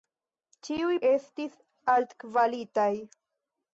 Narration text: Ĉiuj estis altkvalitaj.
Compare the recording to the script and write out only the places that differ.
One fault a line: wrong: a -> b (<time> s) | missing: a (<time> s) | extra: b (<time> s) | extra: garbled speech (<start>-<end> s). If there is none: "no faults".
no faults